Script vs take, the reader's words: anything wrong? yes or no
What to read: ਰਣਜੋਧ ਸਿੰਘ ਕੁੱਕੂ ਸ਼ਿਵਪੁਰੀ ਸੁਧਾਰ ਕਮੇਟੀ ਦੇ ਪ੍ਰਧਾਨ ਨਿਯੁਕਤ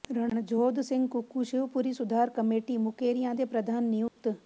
yes